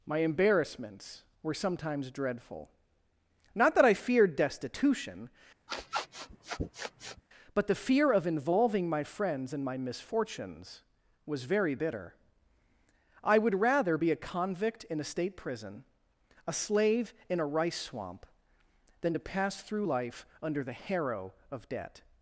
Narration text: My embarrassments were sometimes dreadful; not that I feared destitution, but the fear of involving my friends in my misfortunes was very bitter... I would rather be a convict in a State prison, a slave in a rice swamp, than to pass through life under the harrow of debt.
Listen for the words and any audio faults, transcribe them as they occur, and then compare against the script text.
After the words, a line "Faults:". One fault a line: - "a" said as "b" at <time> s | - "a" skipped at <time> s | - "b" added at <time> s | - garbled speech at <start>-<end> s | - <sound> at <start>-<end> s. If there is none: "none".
My embarrassments were sometimes dreadful; not that I feared destitution, but the fear of involving my friends in my misfortunes was very bitter... I would rather be a convict in a State prison, a slave in a rice swamp, than to pass through life under the harrow of debt.
Faults:
- sniff at 5.7-7.2 s